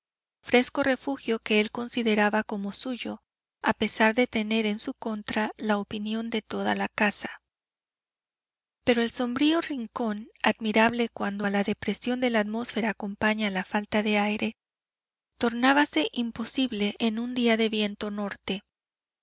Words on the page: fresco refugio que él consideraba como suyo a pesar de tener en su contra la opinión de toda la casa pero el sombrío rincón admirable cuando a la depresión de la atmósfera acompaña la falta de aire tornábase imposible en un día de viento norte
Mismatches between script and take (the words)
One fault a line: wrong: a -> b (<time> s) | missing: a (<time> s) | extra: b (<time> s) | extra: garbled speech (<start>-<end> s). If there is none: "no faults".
no faults